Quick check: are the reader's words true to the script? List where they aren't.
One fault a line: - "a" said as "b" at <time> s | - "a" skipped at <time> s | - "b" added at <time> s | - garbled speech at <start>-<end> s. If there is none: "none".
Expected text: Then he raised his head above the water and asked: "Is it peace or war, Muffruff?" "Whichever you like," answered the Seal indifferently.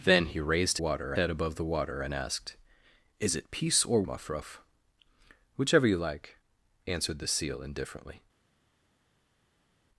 - "his" said as "water" at 0.8 s
- "war" skipped at 4.0 s